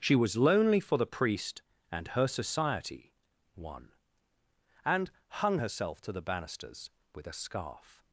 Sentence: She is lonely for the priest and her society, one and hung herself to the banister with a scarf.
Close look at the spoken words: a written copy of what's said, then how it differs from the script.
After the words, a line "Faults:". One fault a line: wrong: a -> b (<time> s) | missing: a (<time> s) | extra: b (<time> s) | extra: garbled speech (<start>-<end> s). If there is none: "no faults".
She was lonely for the priest and her society, one and hung herself to the banisters with a scarf.
Faults:
wrong: is -> was (0.1 s)
wrong: banister -> banisters (6.2 s)